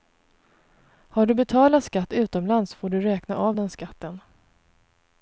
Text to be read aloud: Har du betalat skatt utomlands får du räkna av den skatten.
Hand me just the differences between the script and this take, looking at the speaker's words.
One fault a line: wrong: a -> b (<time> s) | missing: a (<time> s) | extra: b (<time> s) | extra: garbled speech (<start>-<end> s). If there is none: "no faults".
no faults